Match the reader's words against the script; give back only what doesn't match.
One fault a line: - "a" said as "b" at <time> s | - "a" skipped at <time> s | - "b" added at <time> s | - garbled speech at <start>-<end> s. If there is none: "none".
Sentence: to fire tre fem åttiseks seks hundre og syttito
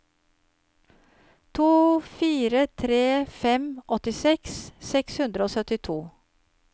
none